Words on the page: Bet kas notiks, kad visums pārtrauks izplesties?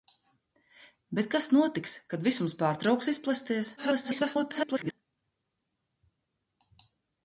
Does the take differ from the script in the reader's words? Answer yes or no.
yes